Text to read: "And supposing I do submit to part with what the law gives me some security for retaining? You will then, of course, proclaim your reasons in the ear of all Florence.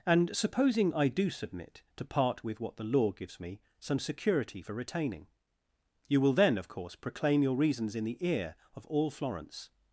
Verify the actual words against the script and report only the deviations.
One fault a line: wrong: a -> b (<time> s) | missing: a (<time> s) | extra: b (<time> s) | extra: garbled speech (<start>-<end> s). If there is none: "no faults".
no faults